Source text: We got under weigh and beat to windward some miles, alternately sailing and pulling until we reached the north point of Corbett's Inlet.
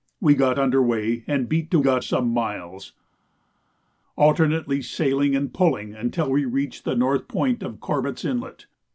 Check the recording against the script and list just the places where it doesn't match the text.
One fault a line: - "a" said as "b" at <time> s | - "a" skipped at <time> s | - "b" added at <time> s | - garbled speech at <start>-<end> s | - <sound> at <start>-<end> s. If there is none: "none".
- "windward" said as "got" at 1.8 s